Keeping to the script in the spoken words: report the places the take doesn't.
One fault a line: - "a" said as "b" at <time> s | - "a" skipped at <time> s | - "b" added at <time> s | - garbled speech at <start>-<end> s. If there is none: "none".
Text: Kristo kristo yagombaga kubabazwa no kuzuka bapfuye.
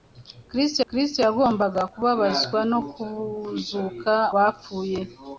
none